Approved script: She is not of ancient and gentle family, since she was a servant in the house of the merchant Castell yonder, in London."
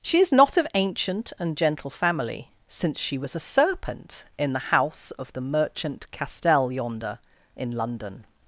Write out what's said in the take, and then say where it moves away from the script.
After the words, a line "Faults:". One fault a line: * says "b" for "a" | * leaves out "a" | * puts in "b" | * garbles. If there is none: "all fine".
She is not of ancient and gentle family, since she was a serpent in the house of the merchant Castell yonder, in London."
Faults:
* says "serpent" for "servant"